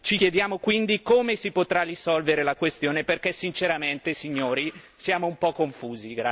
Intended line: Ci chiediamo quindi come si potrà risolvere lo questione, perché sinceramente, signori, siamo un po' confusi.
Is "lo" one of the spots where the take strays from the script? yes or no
yes